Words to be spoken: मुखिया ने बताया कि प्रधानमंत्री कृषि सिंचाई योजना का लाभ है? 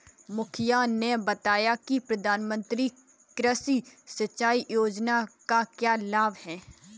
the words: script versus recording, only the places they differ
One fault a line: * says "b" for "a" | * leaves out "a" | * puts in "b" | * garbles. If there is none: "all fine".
* puts in "क्या"